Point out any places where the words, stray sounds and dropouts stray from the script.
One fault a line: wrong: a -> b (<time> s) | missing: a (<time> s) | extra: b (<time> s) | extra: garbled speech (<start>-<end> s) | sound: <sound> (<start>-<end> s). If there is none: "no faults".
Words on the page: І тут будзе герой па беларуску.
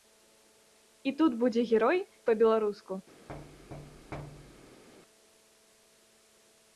sound: thud (3.3-4.8 s)